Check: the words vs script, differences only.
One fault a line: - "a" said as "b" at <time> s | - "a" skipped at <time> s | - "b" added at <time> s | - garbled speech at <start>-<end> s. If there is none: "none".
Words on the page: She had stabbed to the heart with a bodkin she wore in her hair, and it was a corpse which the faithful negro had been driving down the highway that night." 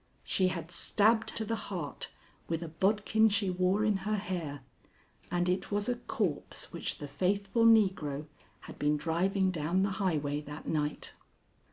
none